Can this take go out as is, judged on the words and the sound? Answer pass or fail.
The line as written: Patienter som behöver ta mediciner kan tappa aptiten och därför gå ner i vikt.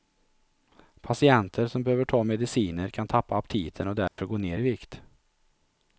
fail